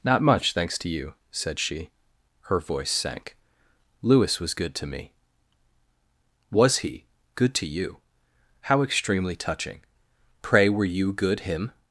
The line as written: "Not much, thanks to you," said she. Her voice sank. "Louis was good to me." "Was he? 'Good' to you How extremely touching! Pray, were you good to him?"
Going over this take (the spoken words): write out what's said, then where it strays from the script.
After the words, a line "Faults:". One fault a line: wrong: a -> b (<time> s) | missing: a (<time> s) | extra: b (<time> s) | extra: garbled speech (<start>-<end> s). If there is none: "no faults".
"Not much, thanks to you," said she. Her voice sank. "Louis was good to me." "Was he? 'Good' to you How extremely touching! Pray, were you good him?"
Faults:
missing: to (11.4 s)